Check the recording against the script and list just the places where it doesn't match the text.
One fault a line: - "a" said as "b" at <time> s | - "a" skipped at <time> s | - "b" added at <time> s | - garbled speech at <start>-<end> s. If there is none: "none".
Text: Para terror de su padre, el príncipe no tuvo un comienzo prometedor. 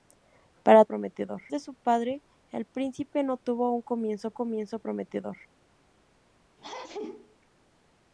- "terror" said as "prometedor" at 0.8 s
- "comienzo" added at 4.3 s